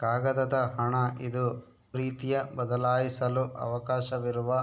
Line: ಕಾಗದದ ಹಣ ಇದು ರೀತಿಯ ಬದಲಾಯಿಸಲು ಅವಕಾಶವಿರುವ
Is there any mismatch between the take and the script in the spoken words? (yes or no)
no